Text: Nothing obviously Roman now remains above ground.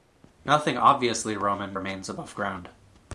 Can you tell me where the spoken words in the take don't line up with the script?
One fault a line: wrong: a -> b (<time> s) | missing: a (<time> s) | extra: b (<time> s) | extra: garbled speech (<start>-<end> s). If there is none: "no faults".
missing: now (1.8 s)